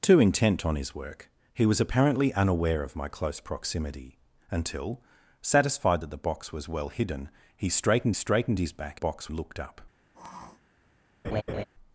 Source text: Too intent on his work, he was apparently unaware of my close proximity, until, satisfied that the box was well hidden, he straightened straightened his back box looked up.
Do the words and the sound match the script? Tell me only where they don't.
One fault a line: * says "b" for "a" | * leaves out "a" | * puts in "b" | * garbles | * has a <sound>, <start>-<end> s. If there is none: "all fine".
* has a sniff, 10.1-10.6 s
* has a laugh, 11.2-11.6 s